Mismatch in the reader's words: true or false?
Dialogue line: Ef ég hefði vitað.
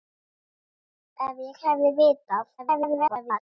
true